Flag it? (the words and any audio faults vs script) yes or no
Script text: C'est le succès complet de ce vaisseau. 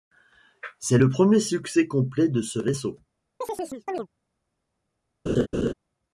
yes